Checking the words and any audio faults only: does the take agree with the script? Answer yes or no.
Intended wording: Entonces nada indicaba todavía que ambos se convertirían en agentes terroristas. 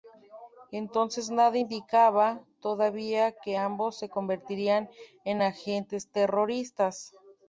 yes